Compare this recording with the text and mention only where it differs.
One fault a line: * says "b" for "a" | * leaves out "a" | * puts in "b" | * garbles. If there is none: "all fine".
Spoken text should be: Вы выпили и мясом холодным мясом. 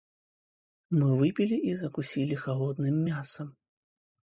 * says "Мы" for "Вы"
* says "закусили" for "мясом"